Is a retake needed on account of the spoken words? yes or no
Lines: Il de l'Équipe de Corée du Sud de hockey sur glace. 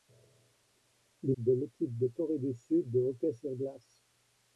no